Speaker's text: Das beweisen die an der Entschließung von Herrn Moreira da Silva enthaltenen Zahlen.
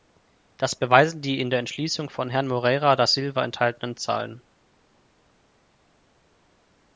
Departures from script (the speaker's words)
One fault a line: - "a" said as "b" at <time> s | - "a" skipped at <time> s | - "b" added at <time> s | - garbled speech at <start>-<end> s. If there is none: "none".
- "an" said as "in" at 1.4 s